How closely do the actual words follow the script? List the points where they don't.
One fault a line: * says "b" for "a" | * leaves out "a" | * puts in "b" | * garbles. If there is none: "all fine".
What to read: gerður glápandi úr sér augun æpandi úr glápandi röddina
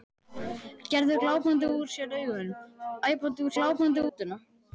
all fine